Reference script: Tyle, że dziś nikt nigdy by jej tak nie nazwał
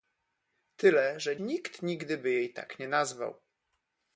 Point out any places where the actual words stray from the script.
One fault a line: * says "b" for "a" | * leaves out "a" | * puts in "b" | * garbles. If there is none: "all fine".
* leaves out "dziś"